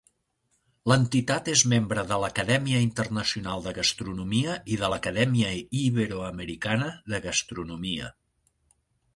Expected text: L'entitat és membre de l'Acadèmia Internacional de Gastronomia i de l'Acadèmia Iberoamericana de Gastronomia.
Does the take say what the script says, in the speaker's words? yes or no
yes